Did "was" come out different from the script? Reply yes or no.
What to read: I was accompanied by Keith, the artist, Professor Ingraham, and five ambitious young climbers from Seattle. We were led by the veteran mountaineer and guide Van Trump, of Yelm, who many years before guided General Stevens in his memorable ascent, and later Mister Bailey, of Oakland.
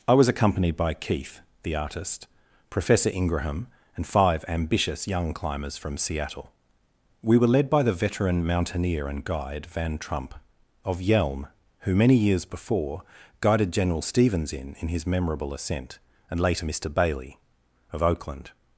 no